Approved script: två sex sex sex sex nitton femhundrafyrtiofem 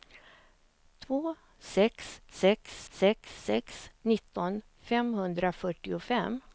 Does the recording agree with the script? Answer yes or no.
yes